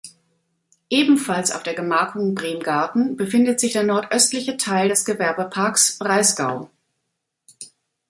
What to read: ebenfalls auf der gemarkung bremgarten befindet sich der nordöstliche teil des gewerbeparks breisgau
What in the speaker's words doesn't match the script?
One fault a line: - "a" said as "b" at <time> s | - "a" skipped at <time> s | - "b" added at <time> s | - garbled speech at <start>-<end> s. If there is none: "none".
none